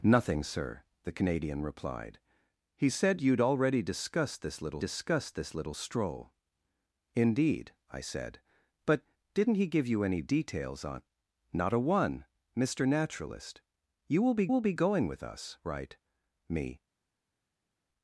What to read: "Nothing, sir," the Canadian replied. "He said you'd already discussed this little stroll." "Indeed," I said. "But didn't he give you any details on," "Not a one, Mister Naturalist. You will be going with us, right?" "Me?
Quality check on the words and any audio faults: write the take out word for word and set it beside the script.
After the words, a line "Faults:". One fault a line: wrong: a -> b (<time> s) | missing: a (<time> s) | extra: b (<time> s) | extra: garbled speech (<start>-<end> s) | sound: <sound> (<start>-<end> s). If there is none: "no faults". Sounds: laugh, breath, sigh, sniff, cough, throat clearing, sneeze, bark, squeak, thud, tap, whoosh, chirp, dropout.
"Nothing, sir," the Canadian replied. "He said you'd already discussed this little discussed this little stroll." "Indeed," I said. "But didn't he give you any details on," "Not a one, Mister Naturalist. You will be will be going with us, right?" "Me?
Faults:
extra: discussed this little (4.8 s)
extra: will be (14.5 s)